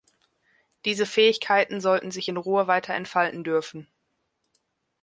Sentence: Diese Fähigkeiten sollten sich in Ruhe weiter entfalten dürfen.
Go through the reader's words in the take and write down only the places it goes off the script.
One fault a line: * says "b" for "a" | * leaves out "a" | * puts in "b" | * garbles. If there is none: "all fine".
all fine